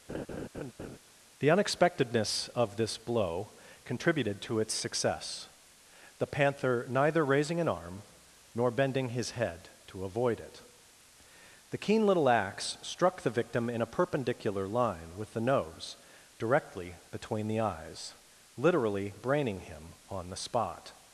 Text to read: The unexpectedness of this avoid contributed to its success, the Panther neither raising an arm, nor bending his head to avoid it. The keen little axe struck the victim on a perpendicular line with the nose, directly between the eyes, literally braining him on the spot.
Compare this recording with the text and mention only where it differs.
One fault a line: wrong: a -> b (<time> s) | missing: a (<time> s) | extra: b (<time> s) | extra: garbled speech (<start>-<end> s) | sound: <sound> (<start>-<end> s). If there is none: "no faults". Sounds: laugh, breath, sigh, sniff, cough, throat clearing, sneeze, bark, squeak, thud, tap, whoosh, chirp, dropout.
sound: laugh (0.1-1.0 s)
wrong: avoid -> blow (3.0 s)
wrong: on -> in (13.7 s)